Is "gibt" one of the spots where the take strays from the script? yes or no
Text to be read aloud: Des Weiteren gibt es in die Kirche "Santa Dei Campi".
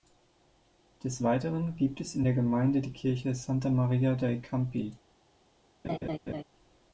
no